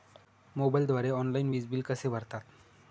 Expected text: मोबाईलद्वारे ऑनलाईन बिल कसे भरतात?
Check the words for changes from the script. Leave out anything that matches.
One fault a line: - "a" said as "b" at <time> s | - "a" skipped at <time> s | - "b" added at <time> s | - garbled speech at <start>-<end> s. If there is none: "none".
- "वीज" added at 1.5 s